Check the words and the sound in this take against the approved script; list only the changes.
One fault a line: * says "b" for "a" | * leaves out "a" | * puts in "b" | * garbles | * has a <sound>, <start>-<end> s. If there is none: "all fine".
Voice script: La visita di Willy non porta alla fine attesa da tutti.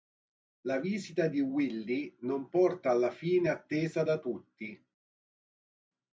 all fine